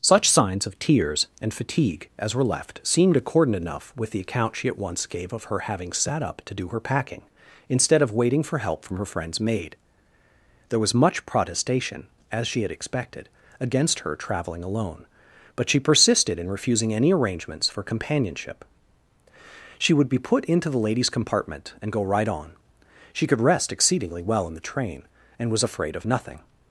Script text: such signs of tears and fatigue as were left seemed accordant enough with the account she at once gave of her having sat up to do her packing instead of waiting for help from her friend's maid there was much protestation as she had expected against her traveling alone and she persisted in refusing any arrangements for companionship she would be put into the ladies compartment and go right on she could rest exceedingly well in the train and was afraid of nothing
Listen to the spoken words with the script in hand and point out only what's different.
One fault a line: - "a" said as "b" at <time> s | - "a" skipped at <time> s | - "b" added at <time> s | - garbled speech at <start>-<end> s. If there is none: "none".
- "and" said as "but" at 15.6 s